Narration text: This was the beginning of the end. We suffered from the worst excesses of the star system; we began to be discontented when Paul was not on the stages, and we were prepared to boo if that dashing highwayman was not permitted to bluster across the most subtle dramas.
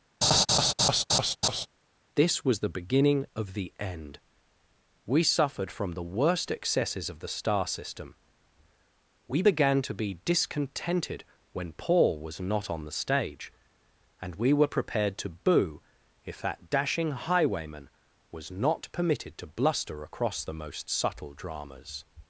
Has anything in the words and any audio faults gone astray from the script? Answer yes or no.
yes